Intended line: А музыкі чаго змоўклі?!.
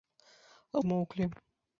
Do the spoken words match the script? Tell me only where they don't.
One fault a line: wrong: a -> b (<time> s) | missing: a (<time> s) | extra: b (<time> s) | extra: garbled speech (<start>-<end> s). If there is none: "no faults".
missing: музыкі чаго (0.8 s)